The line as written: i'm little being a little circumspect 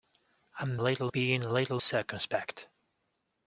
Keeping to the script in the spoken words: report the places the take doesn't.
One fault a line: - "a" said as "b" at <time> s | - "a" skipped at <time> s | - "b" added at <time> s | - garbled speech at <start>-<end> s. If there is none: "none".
none